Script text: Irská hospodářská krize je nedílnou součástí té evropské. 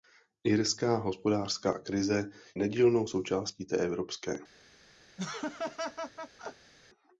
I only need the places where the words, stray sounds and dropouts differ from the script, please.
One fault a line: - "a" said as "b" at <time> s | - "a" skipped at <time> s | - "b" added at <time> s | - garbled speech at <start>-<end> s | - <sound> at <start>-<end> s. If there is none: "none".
- "je" skipped at 2.3 s
- laugh at 5.2-6.7 s